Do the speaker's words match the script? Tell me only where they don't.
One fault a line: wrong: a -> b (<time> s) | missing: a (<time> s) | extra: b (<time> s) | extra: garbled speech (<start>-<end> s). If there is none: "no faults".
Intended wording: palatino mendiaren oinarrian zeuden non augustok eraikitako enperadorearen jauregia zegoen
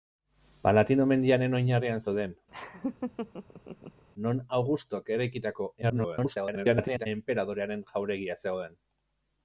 extra: garbled speech (5.8-7.1 s)